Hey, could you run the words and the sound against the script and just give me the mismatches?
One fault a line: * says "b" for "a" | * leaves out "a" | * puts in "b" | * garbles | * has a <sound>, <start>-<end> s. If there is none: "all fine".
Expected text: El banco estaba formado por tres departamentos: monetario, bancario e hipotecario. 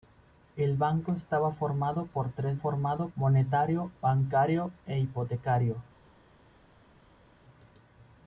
* says "formado" for "departamentos"